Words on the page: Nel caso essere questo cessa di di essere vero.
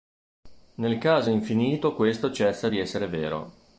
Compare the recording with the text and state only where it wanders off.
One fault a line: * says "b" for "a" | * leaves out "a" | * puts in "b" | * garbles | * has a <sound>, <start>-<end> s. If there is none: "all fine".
* says "infinito" for "essere"
* leaves out "di"